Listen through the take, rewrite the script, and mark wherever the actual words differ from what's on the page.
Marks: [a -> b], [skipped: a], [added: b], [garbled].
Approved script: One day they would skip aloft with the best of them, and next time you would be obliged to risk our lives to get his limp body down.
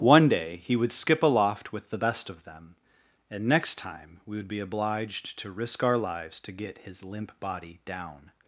One day [they -> he] would skip aloft with the best of them, and next time [you -> we] would be obliged to risk our lives to get his limp body down.